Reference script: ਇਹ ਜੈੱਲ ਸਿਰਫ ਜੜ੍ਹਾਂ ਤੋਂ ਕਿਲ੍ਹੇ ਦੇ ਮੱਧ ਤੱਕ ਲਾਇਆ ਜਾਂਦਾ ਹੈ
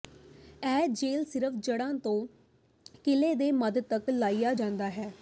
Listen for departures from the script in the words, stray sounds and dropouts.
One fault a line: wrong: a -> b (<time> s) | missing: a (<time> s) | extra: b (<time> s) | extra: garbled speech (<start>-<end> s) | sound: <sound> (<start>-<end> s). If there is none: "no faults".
no faults